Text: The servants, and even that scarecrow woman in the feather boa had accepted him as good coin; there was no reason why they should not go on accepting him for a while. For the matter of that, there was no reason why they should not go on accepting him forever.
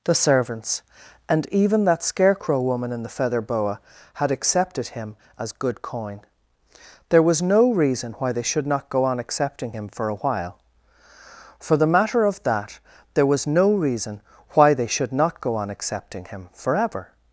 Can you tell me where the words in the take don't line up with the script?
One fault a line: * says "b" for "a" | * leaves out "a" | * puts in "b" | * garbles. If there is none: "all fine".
all fine